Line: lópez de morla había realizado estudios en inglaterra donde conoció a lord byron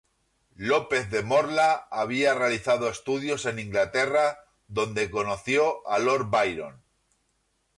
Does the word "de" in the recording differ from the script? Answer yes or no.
no